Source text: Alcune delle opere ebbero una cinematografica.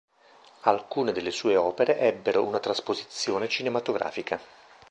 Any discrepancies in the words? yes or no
yes